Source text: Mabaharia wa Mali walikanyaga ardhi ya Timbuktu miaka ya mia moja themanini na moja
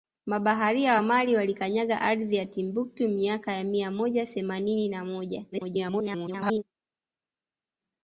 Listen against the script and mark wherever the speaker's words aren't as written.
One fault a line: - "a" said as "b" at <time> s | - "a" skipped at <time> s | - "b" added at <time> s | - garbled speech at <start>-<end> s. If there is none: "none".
- garbled speech at 5.5-6.6 s